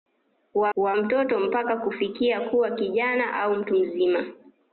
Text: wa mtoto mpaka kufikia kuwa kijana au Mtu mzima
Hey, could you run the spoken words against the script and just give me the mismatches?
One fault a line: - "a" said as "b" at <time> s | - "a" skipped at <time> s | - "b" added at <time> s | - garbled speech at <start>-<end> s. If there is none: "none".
- "wa" added at 0.7 s